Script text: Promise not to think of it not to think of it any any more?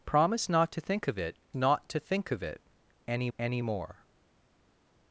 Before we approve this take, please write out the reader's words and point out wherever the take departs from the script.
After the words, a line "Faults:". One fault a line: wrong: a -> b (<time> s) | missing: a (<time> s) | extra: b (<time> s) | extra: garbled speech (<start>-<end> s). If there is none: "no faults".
Promise not to think of it not to think of it any any more?
Faults:
no faults